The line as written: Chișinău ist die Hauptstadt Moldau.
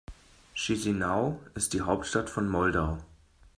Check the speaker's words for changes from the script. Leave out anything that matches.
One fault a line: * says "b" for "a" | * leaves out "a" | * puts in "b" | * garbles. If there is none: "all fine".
* puts in "von"